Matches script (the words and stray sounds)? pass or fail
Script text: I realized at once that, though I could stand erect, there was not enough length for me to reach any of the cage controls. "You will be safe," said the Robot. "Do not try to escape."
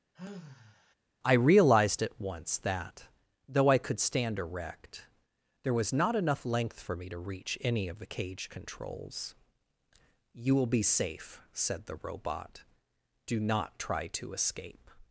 fail